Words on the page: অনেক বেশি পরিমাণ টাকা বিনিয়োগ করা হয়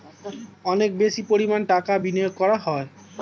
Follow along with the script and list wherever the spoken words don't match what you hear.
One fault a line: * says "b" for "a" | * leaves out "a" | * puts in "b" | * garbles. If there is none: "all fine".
all fine